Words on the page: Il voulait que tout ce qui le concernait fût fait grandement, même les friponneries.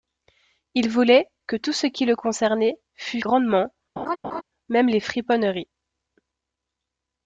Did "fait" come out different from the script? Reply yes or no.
yes